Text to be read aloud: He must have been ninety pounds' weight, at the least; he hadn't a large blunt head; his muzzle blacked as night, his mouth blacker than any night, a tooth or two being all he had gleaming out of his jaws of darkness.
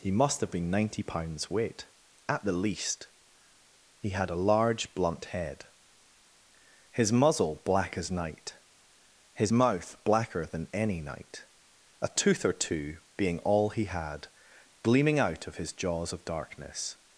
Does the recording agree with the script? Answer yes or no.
no